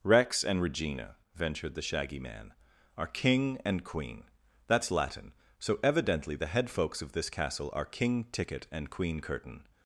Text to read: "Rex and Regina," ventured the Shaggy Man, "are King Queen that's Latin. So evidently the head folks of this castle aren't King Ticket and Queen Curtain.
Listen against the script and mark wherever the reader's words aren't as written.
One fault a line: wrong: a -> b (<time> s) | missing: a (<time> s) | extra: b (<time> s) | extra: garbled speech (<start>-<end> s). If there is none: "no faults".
extra: and (3.6 s)
wrong: aren't -> are (7.7 s)